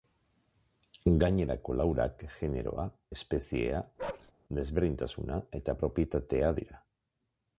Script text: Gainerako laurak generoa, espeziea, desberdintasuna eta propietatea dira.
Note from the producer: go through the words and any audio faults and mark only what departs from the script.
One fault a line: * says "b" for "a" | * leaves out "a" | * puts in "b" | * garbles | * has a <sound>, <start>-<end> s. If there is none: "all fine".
* has a bark, 4.0-4.3 s